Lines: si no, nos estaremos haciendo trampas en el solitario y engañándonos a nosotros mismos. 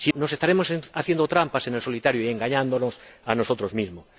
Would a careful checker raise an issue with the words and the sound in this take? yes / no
yes